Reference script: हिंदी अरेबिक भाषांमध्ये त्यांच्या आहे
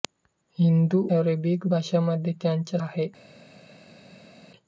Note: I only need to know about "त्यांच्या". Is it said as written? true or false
true